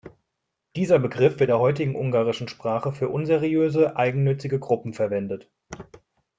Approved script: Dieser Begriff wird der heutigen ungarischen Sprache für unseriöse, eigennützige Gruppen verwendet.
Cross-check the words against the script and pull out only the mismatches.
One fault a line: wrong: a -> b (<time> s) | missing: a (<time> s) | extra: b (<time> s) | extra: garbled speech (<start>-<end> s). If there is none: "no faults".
no faults